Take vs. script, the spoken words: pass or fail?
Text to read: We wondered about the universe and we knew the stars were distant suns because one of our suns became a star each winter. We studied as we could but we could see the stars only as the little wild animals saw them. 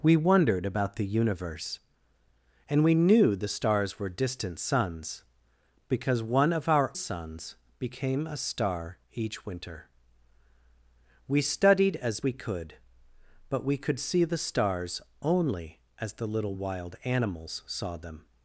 pass